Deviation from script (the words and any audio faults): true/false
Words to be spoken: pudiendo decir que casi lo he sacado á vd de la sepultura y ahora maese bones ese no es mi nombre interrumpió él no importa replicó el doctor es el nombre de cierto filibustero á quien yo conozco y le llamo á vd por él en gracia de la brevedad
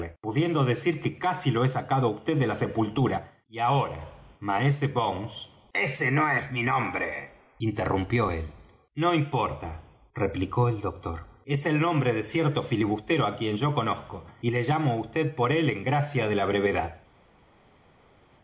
false